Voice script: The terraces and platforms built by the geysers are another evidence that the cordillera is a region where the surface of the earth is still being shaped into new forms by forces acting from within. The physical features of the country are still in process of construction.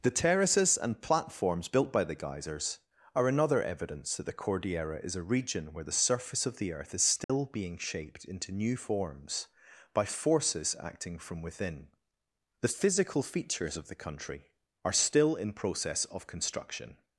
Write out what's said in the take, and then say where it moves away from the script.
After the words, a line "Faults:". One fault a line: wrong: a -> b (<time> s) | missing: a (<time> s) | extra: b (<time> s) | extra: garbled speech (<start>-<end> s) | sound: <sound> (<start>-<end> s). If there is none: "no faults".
The terraces and platforms built by the geysers are another evidence that the cordillera is a region where the surface of the earth is still being shaped into new forms by forces acting from within. The physical features of the country are still in process of construction.
Faults:
sound: dropout (7.2-7.3 s)